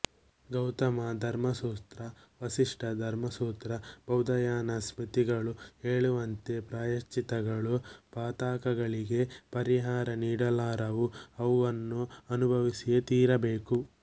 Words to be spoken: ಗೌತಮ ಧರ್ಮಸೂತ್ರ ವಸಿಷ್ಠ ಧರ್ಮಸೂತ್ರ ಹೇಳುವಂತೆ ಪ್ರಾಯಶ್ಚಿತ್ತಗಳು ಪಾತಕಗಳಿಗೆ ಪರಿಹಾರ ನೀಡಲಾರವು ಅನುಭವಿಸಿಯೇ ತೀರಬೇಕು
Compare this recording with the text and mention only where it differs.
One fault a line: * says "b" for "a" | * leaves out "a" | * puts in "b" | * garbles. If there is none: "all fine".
* puts in "ಬೌಧಾಯನ ಸ್ಮೃತಿಗಳು"
* puts in "ಅವನ್ನು"